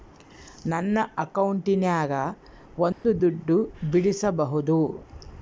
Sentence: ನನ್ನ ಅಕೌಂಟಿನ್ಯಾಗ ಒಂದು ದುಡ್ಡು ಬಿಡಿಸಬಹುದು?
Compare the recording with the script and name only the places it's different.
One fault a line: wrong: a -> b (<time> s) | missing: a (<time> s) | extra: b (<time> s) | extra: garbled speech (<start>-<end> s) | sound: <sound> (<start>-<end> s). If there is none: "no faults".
sound: dropout (2.9-3.0 s)